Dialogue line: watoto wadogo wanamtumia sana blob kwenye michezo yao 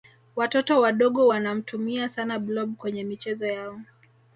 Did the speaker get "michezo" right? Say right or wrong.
right